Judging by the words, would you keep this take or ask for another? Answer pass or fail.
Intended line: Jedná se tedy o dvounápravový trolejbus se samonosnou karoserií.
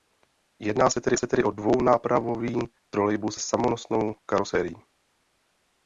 fail